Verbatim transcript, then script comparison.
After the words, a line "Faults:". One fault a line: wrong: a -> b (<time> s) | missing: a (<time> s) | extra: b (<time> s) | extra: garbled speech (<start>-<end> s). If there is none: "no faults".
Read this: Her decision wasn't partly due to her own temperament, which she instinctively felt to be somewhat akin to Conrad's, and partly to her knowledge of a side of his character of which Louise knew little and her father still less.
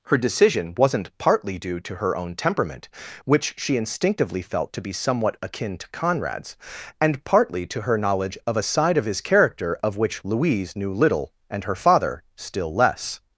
Her decision wasn't partly due to her own temperament, which she instinctively felt to be somewhat akin to Conrad's, and partly to her knowledge of a side of his character of which Louise knew little and her father still less.
Faults:
no faults